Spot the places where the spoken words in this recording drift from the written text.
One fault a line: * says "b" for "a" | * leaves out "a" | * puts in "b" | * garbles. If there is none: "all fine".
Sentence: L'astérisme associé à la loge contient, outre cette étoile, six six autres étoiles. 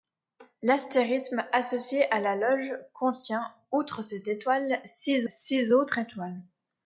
all fine